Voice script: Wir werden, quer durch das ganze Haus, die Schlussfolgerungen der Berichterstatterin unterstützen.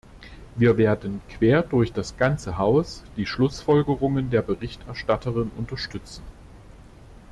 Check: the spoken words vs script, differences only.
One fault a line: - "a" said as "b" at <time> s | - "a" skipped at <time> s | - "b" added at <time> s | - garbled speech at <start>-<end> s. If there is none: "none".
none